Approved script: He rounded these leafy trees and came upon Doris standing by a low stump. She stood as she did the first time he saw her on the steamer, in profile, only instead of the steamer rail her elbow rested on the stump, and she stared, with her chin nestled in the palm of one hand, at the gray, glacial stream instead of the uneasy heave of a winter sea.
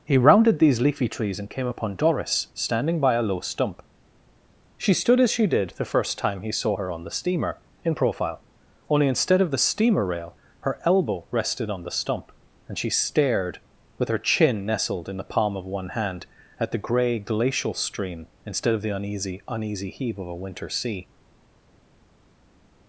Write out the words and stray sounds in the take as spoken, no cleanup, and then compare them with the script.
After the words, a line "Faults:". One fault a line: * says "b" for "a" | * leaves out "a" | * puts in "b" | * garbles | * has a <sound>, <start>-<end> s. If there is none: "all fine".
He rounded these leafy trees and came upon Doris standing by a low stump. She stood as she did the first time he saw her on the steamer, in profile, only instead of the steamer rail her elbow rested on the stump, and she stared, with her chin nestled in the palm of one hand, at the gray, glacial stream instead of the uneasy uneasy heave of a winter sea.
Faults:
* puts in "uneasy"